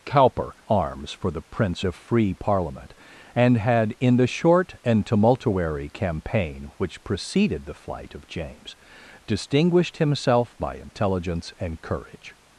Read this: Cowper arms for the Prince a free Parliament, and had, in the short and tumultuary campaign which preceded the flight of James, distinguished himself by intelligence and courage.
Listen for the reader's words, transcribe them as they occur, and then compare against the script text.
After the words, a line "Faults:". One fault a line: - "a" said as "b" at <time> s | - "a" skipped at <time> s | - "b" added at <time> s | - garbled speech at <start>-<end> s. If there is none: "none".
Cowper arms for the Prince a free Parliament, and had, in the short and tumultuary campaign which preceded the flight of James, distinguished himself by intelligence and courage.
Faults:
none